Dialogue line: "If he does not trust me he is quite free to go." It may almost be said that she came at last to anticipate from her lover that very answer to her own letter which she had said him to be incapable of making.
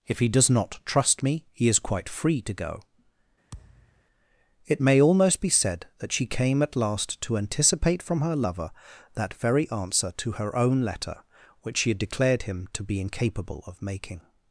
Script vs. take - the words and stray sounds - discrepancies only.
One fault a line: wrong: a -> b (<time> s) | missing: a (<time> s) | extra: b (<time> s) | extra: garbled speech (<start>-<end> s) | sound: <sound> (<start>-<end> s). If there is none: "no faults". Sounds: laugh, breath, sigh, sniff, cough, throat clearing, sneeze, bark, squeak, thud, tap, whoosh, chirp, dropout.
sound: thud (3.5-4.0 s)
wrong: said -> declared (12.0 s)